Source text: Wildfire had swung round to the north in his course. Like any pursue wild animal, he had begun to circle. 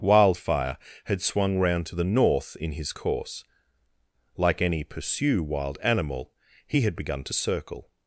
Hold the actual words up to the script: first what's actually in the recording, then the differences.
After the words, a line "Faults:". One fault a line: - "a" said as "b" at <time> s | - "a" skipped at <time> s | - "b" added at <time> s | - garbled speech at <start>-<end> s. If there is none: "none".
Wildfire had swung round to the north in his course. Like any pursue wild animal, he had begun to circle.
Faults:
none